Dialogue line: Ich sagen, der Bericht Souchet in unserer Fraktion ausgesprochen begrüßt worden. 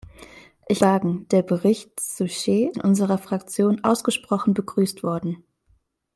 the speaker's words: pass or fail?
pass